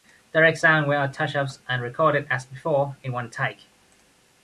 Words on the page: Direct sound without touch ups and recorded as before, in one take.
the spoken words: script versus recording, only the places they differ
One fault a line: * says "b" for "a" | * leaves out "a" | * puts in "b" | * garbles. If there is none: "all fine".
all fine